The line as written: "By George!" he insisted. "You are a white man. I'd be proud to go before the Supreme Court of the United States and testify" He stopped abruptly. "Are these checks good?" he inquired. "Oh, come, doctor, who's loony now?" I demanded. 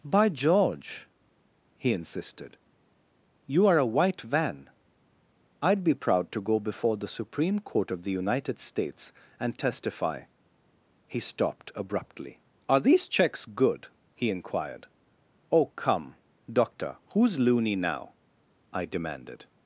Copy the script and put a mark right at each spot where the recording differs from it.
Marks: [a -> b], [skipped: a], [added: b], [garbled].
"By George!" he insisted. "You are a white [man. -> van] I'd be proud to go before the Supreme Court of the United States and testify" He stopped abruptly. "Are these checks good?" he inquired. "Oh, come, doctor, who's loony now?" I demanded.